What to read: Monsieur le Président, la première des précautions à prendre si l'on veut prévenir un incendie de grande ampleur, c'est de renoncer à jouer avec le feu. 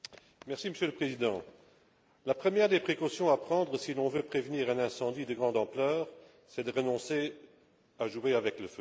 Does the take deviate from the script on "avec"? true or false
false